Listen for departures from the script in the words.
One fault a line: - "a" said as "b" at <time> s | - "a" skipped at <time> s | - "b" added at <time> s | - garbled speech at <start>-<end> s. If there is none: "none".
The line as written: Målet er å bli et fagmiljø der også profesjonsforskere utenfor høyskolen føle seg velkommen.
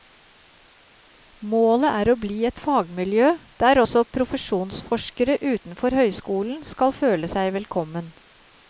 - "skal" added at 6.7 s